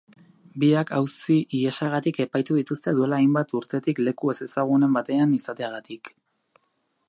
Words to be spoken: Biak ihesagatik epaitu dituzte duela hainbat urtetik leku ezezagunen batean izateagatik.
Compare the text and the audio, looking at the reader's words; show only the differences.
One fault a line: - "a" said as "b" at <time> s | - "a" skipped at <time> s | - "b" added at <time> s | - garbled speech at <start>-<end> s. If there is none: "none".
- "auzi" added at 1.0 s